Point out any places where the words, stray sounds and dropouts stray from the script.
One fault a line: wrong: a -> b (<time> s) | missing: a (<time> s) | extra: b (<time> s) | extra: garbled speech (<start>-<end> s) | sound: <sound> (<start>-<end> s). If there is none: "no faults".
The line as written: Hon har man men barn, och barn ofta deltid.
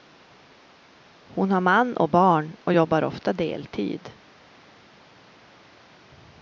wrong: men -> och (2.0 s)
wrong: barn -> jobbar (2.7 s)